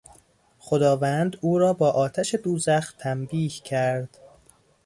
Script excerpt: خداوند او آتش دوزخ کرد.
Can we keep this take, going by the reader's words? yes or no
no